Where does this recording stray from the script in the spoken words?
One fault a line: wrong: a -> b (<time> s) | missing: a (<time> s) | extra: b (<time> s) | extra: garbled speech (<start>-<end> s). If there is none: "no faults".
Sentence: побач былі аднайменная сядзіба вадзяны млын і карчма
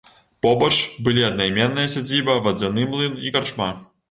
no faults